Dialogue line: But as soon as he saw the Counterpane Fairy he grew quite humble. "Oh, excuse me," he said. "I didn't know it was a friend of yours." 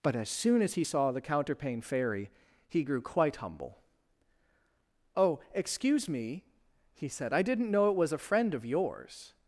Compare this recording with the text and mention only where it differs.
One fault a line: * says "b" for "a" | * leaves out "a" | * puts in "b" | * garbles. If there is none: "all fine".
all fine